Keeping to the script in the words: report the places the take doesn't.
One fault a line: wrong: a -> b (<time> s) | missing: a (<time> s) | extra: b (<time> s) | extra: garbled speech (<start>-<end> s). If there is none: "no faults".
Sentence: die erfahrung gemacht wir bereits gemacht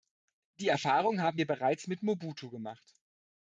wrong: gemacht -> haben (1.2 s)
extra: mit mobutu (1.9 s)